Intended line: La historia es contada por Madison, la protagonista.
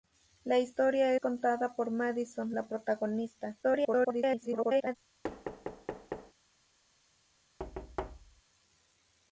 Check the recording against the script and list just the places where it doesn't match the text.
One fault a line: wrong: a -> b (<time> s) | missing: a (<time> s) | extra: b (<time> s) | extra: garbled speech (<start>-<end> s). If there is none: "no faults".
missing: es (1.1 s)
extra: garbled speech (3.6-5.0 s)